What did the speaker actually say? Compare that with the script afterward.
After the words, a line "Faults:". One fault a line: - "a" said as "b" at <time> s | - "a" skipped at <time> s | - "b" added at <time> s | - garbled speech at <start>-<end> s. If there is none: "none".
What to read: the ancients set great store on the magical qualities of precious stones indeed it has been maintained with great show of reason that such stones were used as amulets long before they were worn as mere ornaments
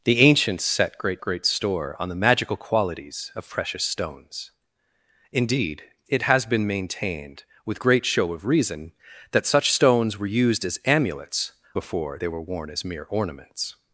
the ancients set great great store on the magical qualities of precious stones indeed it has been maintained with great show of reason that such stones were used as amulets before they were worn as mere ornaments
Faults:
- "great" added at 1.2 s
- "long" skipped at 11.5 s